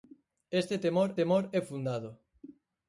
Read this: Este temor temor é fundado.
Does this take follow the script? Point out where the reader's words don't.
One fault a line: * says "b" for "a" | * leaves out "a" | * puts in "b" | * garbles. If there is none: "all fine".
all fine